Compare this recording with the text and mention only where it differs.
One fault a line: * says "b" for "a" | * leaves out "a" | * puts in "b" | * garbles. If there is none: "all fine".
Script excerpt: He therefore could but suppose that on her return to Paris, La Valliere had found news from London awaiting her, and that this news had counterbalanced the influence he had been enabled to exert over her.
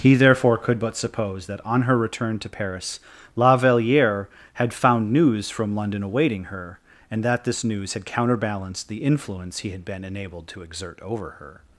all fine